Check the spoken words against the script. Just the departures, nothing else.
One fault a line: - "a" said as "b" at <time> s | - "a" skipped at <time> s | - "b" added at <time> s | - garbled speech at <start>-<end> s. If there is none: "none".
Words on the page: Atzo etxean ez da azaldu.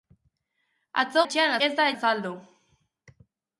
none